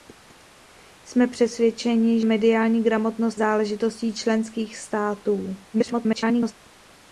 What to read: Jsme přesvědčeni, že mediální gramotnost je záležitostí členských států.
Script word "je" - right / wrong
wrong